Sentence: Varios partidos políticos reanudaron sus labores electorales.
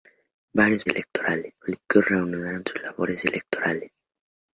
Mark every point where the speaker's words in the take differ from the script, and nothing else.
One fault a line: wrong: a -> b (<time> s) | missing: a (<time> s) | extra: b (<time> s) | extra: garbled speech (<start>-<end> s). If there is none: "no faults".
wrong: partidos -> electorales (0.9 s)